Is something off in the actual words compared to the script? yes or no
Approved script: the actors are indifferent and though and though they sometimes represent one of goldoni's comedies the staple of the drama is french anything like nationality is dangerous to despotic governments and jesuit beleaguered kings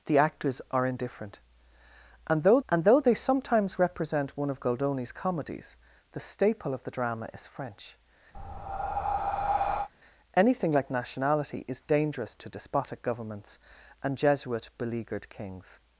no